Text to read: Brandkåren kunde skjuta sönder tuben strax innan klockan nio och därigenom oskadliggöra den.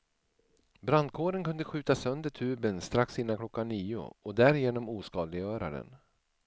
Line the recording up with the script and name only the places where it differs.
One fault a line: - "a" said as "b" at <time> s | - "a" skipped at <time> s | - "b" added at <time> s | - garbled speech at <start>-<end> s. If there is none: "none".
none